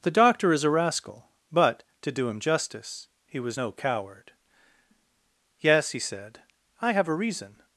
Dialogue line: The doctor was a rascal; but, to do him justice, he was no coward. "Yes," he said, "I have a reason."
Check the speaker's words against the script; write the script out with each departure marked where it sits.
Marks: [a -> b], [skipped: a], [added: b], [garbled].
The doctor [was -> is] a rascal; but, to do him justice, he was no coward. "Yes," he said, "I have a reason."